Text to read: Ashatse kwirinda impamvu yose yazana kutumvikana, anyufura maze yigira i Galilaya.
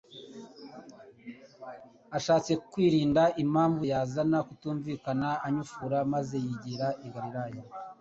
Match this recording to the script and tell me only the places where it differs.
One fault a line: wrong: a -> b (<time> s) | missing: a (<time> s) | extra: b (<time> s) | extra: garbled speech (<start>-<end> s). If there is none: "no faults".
missing: yose (3.8 s)